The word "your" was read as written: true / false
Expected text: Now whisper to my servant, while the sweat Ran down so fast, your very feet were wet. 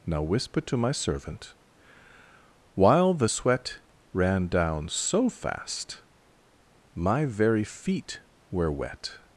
false